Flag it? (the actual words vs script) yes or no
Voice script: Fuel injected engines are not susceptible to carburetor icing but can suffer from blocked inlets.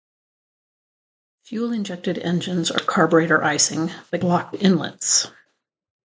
yes